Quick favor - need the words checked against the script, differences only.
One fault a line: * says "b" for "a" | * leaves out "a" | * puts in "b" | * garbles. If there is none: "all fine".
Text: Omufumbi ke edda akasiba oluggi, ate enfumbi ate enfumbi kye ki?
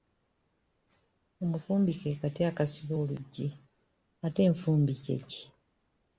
* says "kati" for "edda"
* leaves out "ate enfumbi"